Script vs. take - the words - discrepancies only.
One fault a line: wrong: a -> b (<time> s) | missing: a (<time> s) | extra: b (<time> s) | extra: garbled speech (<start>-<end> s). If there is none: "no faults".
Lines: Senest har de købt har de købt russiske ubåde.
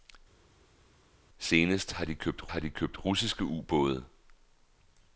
no faults